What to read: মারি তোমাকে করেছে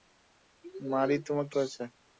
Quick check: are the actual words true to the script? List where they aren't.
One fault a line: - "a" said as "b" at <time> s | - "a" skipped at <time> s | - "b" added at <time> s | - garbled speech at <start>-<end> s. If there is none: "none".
none